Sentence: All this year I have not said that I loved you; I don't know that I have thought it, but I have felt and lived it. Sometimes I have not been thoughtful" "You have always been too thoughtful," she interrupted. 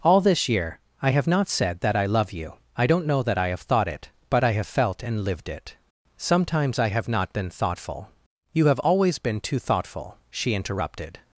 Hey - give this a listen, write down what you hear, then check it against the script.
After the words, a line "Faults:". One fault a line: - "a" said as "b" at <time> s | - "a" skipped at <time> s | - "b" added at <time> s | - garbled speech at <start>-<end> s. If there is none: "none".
All this year I have not said that I love you; I don't know that I have thought it, but I have felt and lived it. Sometimes I have not been thoughtful" "You have always been too thoughtful," she interrupted.
Faults:
- "loved" said as "love" at 2.0 s